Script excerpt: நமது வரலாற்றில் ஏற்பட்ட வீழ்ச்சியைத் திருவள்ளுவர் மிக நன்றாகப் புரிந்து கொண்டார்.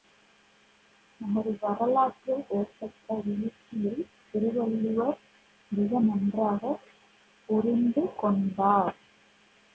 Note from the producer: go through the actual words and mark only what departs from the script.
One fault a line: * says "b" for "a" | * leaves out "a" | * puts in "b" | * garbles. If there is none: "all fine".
all fine